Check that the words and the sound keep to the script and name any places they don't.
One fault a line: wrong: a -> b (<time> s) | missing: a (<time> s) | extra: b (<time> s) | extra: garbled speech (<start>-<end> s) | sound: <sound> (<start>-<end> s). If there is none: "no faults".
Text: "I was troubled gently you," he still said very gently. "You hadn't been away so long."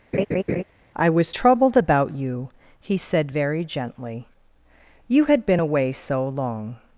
sound: laugh (0.1-0.6 s)
wrong: gently -> about (1.8 s)
missing: still (3.0 s)
wrong: hadn't -> had (5.3 s)